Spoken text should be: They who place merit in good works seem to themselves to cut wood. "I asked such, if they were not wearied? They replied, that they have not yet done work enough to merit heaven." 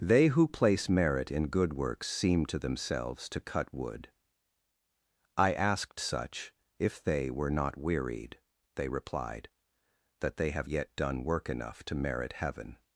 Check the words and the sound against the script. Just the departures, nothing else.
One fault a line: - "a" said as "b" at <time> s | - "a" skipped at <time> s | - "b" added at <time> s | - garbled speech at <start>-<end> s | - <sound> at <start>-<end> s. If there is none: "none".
- "not" skipped at 10.7 s